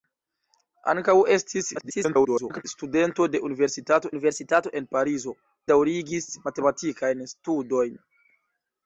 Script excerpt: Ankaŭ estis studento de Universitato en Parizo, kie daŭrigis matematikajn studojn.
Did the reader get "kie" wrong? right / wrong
wrong